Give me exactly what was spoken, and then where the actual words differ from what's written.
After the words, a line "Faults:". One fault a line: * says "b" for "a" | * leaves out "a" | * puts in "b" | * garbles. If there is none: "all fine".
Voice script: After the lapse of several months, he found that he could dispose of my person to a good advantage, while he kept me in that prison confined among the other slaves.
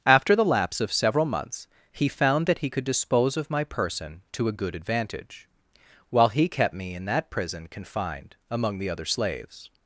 After the lapse of several months, he found that he could dispose of my person to a good advantage, while he kept me in that prison confined among the other slaves.
Faults:
all fine